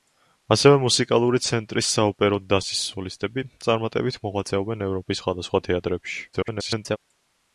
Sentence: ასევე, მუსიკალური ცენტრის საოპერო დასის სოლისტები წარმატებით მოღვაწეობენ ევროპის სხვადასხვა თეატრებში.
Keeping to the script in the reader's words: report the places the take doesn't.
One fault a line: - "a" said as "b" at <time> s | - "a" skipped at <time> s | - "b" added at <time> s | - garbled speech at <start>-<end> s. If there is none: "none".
- garbled speech at 6.3-7.0 s